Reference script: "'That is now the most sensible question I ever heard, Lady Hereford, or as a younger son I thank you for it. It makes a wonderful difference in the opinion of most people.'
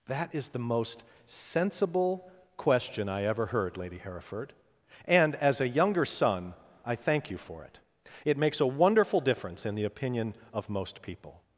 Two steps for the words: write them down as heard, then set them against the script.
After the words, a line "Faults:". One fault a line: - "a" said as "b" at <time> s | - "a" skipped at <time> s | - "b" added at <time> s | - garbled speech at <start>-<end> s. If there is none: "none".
"'That is the most sensible question I ever heard, Lady Hereford, and as a younger son I thank you for it. It makes a wonderful difference in the opinion of most people.'
Faults:
- "now" skipped at 0.5 s
- "or" said as "and" at 5.0 s